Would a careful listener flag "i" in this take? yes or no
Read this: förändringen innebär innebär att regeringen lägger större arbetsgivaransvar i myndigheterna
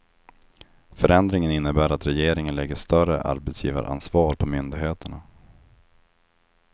yes